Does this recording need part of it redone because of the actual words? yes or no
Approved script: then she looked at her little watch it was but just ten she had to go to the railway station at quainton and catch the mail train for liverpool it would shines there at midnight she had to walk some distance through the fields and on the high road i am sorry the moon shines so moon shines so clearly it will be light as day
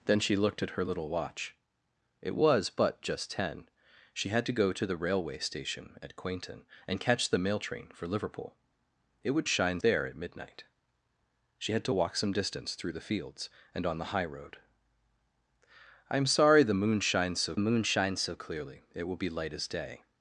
no